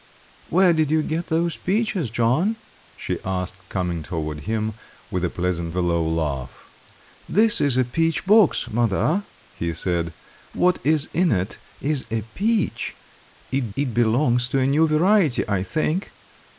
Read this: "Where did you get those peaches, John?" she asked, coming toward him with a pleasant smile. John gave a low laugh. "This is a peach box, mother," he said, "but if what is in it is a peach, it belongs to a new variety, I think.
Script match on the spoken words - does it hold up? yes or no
no